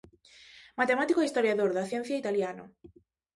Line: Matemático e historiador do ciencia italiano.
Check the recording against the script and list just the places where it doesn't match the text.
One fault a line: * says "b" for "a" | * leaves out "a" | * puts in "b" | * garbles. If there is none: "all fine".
* says "da" for "do"